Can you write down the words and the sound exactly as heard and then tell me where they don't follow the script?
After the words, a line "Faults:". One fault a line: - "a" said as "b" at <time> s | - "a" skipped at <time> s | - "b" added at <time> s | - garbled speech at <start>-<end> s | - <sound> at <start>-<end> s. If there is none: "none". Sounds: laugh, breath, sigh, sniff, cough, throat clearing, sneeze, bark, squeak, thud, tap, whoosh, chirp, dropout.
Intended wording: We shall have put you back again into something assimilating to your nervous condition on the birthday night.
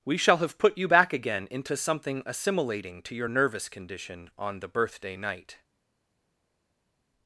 We shall have put you back again into something assimilating to your nervous condition on the birthday night.
Faults:
none